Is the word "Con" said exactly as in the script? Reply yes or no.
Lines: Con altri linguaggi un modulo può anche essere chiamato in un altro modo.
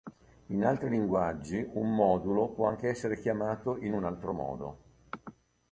no